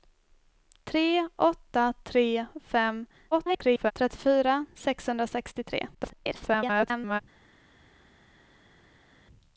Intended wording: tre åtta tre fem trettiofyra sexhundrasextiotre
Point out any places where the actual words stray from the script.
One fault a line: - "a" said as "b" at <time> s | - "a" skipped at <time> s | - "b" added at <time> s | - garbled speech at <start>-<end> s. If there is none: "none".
- garbled speech at 3.3-3.9 s
- garbled speech at 5.9-7.2 s